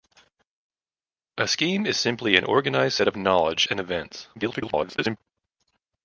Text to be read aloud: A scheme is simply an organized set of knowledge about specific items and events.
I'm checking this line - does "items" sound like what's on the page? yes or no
no